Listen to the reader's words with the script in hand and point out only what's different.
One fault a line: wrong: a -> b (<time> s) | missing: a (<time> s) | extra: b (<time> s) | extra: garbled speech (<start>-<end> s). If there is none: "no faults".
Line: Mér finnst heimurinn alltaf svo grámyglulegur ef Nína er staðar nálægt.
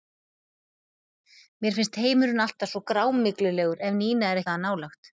no faults